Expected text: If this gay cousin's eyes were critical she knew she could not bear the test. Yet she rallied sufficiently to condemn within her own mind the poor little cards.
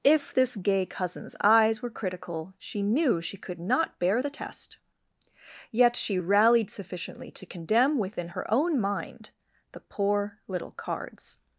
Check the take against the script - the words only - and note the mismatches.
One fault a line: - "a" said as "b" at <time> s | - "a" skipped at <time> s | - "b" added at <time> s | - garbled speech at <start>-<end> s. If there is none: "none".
none